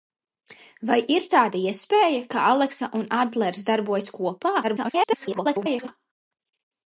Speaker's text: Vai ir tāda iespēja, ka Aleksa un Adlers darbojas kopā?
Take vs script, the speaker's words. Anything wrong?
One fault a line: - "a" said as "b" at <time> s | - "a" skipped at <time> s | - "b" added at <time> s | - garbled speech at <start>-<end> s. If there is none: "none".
- garbled speech at 4.6-5.9 s